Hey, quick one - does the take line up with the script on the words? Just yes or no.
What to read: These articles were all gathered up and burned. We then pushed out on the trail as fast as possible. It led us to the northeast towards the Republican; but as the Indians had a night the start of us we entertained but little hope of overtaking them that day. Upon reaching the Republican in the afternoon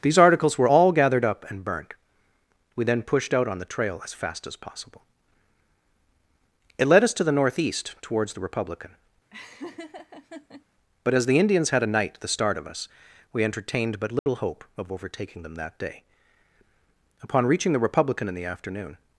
yes